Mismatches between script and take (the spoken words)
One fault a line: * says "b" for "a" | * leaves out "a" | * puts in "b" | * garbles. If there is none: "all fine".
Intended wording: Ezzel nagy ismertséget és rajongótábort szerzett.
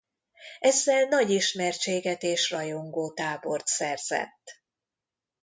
all fine